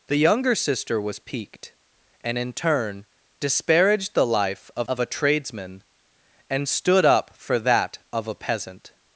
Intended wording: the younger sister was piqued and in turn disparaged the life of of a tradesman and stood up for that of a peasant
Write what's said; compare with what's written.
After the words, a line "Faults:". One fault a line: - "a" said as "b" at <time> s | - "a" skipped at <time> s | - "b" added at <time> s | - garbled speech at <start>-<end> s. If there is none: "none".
the younger sister was piqued and in turn disparaged the life of of a tradesman and stood up for that of a peasant
Faults:
none